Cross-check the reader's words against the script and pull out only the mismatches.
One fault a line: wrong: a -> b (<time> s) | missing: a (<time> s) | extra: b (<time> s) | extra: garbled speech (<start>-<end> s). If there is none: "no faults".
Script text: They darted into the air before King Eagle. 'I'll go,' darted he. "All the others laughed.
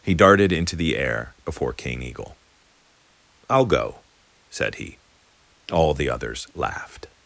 wrong: They -> He (0.0 s)
wrong: darted -> said (4.5 s)